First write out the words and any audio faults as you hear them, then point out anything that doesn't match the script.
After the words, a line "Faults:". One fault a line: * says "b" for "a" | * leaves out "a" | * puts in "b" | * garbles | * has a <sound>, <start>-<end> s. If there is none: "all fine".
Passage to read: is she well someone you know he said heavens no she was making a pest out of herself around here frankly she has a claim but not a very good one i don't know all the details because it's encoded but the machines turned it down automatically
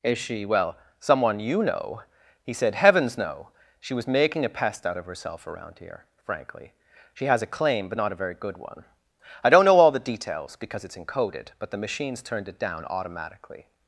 is she well someone you know he said heavens no she was making a pest out of herself around here frankly she has a claim but not a very good one i don't know all the details because it's encoded but the machines turned it down automatically
Faults:
all fine